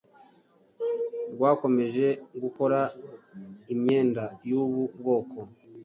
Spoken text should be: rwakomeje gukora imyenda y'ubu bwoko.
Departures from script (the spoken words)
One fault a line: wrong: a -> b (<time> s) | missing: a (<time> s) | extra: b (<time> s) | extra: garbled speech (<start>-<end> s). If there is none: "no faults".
no faults